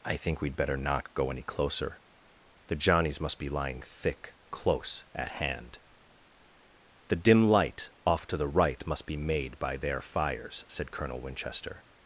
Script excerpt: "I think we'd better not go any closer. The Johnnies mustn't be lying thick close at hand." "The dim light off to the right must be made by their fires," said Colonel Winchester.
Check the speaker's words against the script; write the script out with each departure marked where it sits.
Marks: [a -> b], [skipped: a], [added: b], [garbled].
"I think we'd better not go any closer. The Johnnies [mustn't -> must] be lying thick close at hand." "The dim light off to the right must be made by their fires," said Colonel Winchester.